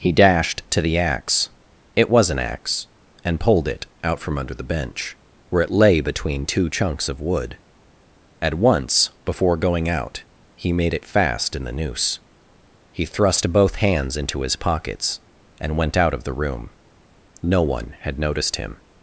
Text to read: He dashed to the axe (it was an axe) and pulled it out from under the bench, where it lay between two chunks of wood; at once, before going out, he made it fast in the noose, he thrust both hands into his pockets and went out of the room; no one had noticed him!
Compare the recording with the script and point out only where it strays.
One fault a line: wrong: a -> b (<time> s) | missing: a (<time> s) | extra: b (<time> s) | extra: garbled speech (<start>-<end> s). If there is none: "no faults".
no faults